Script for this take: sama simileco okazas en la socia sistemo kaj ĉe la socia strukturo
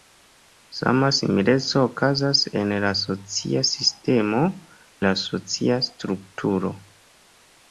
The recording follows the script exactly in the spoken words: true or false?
false